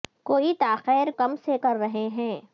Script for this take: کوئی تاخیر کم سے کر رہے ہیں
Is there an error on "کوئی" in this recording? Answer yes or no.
no